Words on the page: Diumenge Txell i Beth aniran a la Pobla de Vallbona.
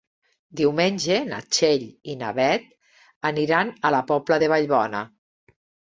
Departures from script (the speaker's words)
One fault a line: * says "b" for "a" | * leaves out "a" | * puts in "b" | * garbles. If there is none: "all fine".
* puts in "na"
* puts in "na"